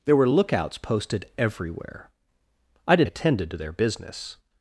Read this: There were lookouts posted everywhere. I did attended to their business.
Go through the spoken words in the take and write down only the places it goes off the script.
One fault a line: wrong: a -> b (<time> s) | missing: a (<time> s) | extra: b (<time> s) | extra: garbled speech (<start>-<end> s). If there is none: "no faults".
no faults